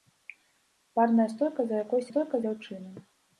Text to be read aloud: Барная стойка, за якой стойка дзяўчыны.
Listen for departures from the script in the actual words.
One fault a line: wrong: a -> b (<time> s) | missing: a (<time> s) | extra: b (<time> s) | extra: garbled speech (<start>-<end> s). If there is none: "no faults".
no faults